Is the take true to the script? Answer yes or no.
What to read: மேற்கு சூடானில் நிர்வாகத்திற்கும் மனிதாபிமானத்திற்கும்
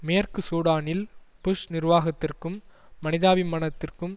no